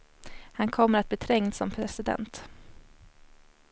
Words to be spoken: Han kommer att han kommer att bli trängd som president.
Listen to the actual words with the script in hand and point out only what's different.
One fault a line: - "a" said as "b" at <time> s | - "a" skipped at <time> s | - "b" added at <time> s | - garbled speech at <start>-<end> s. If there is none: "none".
- "han kommer att" skipped at 1.1 s